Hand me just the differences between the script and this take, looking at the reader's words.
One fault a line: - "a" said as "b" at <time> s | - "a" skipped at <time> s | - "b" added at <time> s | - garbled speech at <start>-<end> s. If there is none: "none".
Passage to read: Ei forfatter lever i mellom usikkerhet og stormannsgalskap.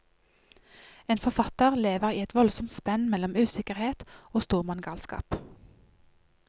- "Ei" said as "En" at 1.1 s
- "et voldsomt spenn" added at 2.2 s